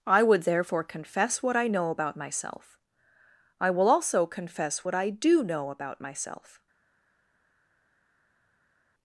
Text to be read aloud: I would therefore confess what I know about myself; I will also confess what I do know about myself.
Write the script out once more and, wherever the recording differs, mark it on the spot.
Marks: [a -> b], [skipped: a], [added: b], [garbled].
I would therefore confess what I know about myself; I will also confess what I do know about myself.